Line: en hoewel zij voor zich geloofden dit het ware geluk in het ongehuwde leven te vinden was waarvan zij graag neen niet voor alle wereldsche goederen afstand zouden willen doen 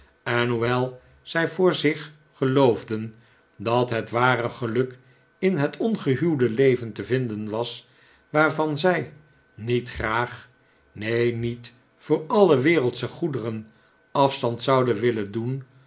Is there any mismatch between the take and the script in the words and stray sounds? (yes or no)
yes